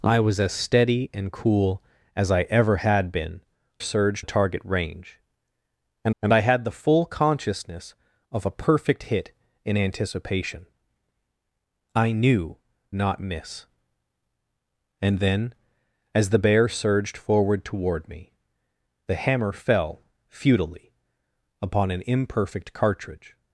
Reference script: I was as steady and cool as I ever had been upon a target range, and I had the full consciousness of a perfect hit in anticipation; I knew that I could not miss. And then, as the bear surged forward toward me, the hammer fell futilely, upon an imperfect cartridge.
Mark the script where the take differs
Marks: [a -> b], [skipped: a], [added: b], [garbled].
I was as steady and cool as I ever had been [upon -> surged] a target range, and [added: and] I had the full consciousness of a perfect hit in anticipation; I knew [skipped: that I could] not miss. And then, as the bear surged forward toward me, the hammer fell futilely, upon an imperfect cartridge.